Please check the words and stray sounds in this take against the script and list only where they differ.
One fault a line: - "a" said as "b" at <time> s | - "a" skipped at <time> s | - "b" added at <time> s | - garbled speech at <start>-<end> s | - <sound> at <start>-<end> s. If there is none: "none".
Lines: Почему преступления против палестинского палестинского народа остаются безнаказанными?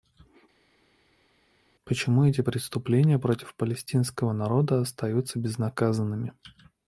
- "эти" added at 2.2 s
- "палестинского" skipped at 4.3 s